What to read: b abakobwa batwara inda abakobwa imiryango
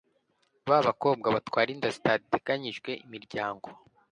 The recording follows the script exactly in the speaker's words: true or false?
false